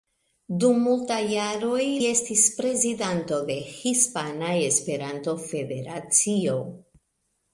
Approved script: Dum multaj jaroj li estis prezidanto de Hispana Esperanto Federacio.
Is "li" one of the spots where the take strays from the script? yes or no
yes